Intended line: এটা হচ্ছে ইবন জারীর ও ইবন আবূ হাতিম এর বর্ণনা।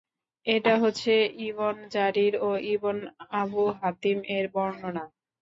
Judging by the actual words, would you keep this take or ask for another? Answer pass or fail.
pass